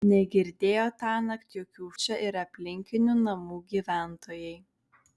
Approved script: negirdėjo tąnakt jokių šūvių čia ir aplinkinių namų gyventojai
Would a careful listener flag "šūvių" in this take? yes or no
yes